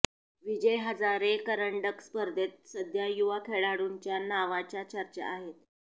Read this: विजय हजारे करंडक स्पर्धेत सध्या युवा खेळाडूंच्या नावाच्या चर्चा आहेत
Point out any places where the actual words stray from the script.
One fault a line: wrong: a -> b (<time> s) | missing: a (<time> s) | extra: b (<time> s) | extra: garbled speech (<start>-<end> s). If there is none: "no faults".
no faults